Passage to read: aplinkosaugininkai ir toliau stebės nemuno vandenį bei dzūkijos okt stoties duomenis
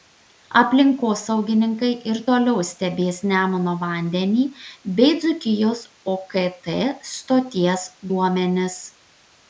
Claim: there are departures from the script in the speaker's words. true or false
false